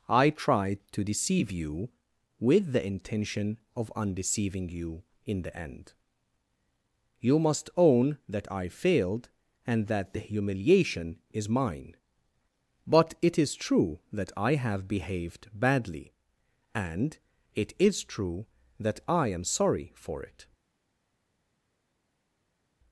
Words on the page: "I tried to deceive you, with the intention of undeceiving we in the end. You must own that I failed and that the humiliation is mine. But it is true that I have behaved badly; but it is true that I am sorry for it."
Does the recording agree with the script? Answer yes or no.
no